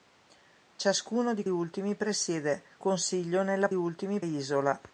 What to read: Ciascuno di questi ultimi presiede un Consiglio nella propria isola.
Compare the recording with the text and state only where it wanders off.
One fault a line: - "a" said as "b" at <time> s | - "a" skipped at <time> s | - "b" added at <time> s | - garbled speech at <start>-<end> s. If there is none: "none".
- "questi" skipped at 1.4 s
- "un" skipped at 2.6 s
- "propria" said as "ultimi" at 3.7 s